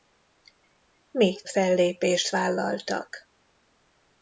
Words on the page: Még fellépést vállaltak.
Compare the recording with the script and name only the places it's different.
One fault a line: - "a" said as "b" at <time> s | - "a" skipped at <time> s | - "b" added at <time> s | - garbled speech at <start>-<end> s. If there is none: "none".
none